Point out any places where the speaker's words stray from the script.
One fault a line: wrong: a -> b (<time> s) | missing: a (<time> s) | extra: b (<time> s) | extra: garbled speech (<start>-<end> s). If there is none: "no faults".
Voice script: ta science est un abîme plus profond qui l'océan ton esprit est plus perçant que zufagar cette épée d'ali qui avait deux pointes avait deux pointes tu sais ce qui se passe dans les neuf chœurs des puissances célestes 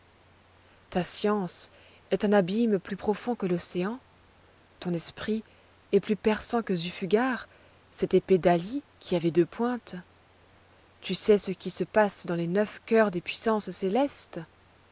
wrong: qui -> que (3.3 s)
missing: avait deux pointes (10.0 s)